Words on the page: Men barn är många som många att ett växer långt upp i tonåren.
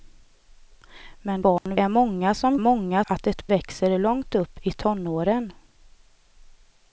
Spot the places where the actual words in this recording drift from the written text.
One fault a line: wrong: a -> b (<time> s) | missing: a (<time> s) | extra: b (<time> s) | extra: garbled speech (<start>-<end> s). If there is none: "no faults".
no faults